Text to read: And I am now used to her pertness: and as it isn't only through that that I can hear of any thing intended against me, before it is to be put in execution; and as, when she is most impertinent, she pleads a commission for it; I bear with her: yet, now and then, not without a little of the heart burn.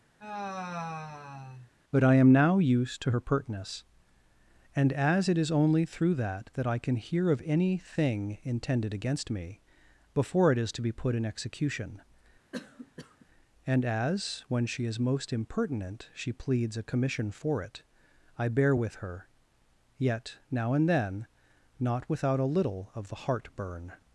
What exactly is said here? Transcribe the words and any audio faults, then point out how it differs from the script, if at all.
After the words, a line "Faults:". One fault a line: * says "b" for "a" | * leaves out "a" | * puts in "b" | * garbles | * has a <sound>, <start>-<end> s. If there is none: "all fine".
But I am now used to her pertness: and as it is only through that that I can hear of any thing intended against me, before it is to be put in execution; and as, when she is most impertinent, she pleads a commission for it; I bear with her: yet, now and then, not without a little of the heart burn.
Faults:
* has a sigh, 0.2-1.7 s
* says "But" for "And"
* says "is" for "isn't"
* has a cough, 12.5-13.3 s